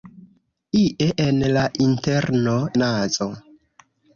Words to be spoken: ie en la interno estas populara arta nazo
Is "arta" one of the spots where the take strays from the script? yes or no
yes